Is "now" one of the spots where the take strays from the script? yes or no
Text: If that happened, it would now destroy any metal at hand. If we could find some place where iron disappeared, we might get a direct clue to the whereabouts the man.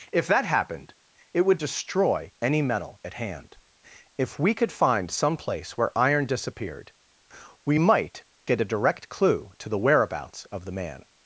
yes